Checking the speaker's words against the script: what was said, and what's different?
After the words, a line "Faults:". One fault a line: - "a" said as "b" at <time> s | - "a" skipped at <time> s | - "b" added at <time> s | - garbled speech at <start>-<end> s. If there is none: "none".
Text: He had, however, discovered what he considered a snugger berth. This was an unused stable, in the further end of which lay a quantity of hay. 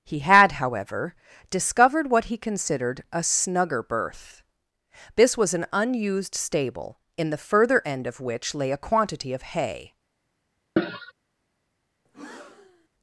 He had, however, discovered what he considered a snugger berth. This was an unused stable, in the further end of which lay a quantity of hay.
Faults:
none